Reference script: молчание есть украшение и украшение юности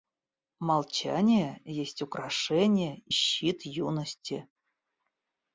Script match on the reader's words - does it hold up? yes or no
no